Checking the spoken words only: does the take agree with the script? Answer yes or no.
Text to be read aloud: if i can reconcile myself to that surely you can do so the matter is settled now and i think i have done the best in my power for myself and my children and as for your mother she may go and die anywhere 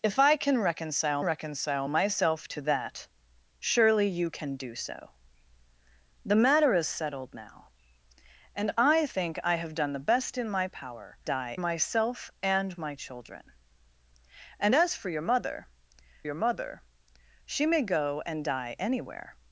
no